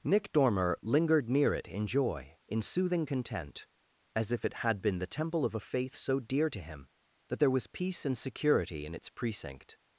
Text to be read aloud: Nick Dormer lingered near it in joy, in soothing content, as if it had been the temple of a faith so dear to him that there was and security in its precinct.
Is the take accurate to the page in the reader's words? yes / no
no